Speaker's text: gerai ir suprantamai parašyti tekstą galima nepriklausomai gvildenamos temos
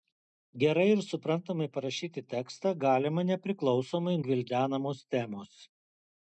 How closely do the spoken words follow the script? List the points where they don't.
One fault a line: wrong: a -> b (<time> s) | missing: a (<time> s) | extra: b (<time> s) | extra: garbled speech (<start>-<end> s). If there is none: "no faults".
no faults